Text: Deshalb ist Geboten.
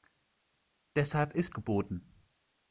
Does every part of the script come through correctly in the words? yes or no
yes